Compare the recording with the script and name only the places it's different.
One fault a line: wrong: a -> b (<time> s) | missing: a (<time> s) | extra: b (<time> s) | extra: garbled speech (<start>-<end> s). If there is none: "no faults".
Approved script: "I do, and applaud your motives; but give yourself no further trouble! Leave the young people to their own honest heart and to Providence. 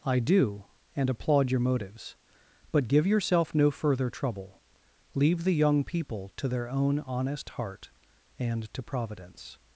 no faults